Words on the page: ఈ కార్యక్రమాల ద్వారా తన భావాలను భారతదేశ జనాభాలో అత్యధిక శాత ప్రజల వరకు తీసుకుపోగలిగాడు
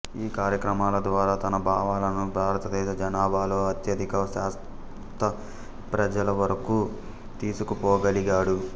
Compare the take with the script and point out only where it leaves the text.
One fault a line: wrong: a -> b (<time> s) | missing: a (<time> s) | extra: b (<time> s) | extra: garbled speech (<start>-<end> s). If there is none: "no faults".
no faults